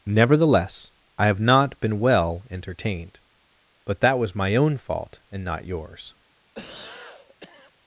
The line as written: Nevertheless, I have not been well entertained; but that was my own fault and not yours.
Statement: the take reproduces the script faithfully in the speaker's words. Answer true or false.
true